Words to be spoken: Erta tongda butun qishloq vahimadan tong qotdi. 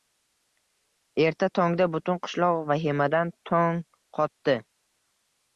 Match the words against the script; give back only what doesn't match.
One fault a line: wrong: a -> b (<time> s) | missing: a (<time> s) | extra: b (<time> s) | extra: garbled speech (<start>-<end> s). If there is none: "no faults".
no faults